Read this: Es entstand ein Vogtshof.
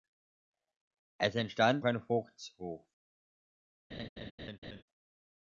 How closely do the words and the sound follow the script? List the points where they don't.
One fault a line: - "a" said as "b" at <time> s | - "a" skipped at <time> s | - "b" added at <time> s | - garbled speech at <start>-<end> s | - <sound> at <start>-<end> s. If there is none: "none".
- laugh at 3.9-4.8 s